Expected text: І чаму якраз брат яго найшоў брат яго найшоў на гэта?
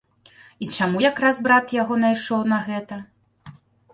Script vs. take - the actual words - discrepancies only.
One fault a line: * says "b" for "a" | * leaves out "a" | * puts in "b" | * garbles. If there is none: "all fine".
* leaves out "брат яго найшоў"